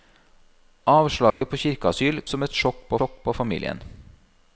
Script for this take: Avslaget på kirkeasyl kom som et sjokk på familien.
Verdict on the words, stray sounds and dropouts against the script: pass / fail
fail